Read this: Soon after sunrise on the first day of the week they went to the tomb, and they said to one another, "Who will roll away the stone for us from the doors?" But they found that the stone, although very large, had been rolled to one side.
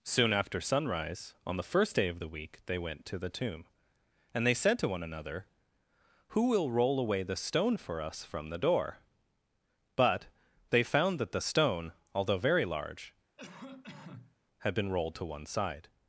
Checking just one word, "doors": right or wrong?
wrong